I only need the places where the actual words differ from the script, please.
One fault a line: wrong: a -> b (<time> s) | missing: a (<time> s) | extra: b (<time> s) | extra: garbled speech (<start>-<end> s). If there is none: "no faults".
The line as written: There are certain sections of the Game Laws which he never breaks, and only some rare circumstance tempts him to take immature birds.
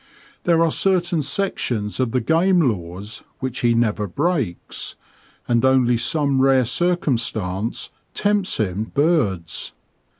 missing: to take immature (8.9 s)